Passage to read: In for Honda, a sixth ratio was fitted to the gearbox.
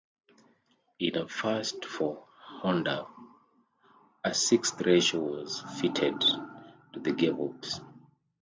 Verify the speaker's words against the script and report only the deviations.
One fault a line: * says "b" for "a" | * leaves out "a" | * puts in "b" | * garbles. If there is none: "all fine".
* puts in "a first"